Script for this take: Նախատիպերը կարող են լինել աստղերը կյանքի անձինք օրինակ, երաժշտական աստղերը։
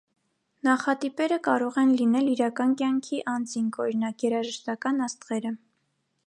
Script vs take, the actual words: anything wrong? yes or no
yes